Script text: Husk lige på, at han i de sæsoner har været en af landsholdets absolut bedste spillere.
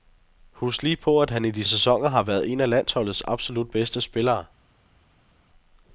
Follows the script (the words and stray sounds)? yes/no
yes